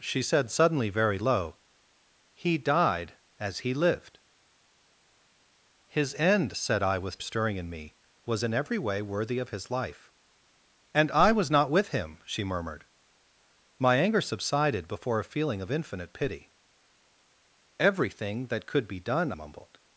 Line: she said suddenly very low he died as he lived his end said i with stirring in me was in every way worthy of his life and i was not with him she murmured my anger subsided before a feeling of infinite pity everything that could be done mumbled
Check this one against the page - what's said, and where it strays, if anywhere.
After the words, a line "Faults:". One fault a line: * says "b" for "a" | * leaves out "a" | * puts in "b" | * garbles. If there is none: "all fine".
she said suddenly very low he died as he lived his end said i with stirring in me was in every way worthy of his life and i was not with him she murmured my anger subsided before a feeling of infinite pity everything that could be done mumbled
Faults:
all fine